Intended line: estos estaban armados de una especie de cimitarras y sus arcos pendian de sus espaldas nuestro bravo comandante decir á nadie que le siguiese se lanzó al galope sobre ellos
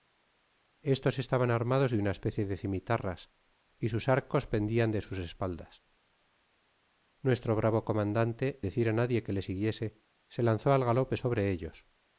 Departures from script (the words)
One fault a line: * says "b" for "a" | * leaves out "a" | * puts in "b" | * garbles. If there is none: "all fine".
all fine